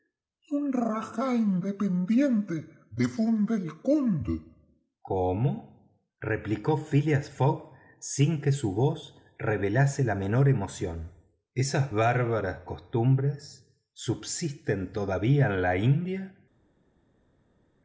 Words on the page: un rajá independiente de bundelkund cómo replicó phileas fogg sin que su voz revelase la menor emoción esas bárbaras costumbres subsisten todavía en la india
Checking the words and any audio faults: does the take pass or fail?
pass